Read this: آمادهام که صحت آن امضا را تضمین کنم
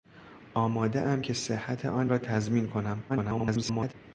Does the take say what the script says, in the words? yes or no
no